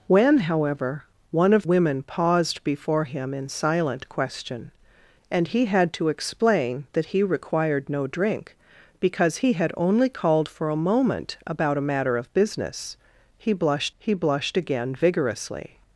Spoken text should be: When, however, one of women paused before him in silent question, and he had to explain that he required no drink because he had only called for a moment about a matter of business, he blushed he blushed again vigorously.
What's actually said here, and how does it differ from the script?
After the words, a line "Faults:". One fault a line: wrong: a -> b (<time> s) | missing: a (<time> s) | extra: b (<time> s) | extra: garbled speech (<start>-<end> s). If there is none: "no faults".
When, however, one of women paused before him in silent question, and he had to explain that he required no drink because he had only called for a moment about a matter of business, he blushed he blushed again vigorously.
Faults:
no faults